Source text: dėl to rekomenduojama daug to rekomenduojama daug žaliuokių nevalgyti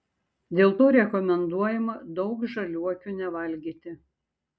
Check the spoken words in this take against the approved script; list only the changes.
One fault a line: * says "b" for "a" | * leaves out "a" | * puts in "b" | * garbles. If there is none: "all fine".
* leaves out "to rekomenduojama daug"